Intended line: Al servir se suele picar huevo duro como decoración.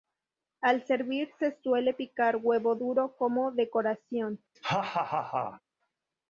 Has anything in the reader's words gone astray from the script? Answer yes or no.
no